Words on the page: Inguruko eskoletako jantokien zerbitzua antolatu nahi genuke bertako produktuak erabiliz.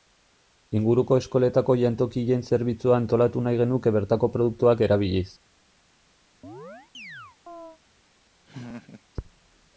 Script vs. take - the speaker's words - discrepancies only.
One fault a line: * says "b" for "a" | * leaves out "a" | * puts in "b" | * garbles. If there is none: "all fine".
all fine